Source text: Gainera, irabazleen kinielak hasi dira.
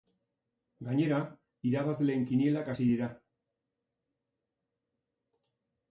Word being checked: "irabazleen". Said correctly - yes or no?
yes